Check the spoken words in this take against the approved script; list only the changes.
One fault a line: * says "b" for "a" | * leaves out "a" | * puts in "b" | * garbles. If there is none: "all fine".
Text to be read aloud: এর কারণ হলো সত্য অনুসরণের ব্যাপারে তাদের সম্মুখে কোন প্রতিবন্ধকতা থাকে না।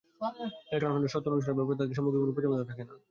all fine